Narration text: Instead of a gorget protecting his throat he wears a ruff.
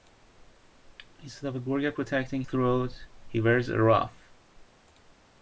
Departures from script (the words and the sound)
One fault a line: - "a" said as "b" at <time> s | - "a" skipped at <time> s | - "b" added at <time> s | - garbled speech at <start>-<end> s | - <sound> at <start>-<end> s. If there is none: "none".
- "his" skipped at 2.4 s